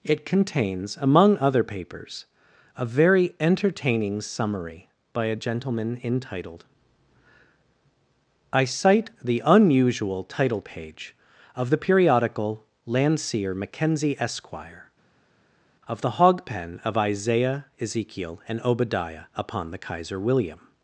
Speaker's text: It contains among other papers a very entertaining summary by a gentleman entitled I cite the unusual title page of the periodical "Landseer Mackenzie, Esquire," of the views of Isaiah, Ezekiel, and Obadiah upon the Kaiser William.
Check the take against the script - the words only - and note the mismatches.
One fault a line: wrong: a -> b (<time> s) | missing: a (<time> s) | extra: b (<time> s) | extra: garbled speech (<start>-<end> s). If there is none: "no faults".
wrong: views -> hogpen (16.1 s)